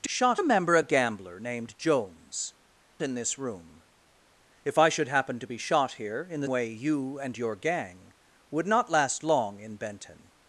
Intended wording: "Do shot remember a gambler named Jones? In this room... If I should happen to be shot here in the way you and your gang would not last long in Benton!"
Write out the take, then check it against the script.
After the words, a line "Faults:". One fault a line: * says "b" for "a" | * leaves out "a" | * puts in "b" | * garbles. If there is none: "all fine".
"Do shot remember a gambler named Jones? In this room... If I should happen to be shot here in the way you and your gang would not last long in Benton!"
Faults:
all fine